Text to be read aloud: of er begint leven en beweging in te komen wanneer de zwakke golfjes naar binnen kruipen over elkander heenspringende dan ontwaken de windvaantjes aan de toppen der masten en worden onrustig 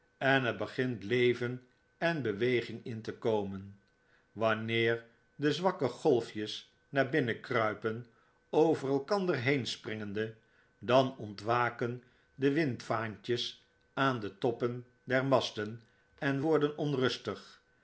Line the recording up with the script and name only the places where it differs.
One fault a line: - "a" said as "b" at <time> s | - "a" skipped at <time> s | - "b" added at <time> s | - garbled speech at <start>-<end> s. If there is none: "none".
- "of" said as "en" at 0.2 s